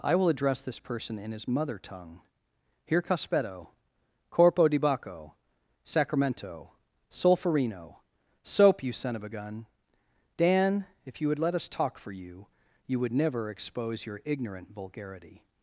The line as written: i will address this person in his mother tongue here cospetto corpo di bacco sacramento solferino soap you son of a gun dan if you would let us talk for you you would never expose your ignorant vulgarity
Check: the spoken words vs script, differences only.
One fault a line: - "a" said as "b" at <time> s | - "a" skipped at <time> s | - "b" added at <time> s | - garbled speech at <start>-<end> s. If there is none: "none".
none